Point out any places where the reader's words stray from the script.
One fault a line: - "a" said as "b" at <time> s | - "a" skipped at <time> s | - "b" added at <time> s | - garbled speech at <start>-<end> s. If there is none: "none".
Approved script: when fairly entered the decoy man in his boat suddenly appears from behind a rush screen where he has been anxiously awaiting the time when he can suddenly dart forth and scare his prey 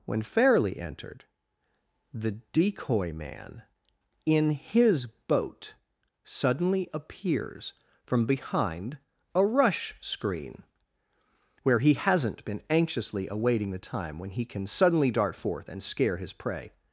- "has" said as "hasn't" at 11.9 s